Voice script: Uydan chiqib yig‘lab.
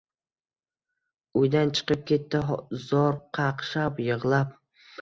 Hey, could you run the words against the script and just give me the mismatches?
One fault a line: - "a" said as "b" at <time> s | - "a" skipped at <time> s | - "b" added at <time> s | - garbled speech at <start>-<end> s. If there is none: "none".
- "ketdi zor qaqshab" added at 2.1 s